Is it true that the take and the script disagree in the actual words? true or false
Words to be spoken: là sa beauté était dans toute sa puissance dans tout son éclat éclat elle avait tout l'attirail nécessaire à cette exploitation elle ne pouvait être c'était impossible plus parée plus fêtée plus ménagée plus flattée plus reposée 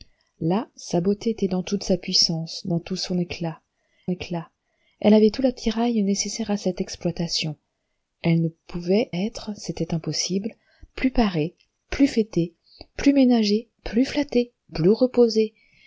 false